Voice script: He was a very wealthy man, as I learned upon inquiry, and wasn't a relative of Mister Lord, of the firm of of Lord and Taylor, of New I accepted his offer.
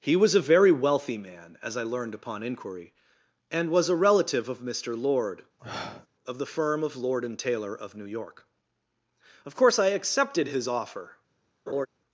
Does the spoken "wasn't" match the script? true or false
false